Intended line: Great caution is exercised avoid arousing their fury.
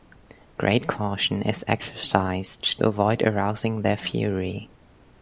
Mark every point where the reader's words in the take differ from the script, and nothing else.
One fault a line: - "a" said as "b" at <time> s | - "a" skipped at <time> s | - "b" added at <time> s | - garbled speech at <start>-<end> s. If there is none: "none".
none